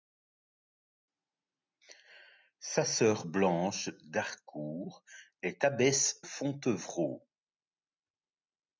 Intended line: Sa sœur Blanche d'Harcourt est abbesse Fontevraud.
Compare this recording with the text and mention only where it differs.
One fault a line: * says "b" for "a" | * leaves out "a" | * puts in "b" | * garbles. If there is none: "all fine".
all fine